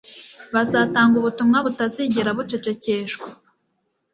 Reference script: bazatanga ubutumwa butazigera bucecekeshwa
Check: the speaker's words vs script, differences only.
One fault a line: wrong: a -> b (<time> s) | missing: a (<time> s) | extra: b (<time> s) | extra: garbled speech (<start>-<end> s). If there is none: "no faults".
no faults